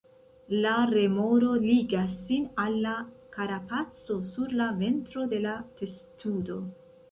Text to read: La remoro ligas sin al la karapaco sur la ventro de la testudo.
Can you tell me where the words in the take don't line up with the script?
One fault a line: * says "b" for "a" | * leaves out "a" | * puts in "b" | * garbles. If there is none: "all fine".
all fine